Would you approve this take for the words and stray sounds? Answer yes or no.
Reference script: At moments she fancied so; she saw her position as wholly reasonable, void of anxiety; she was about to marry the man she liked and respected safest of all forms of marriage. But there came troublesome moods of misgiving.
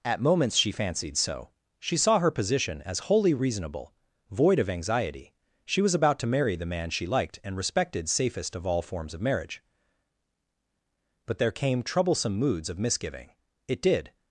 no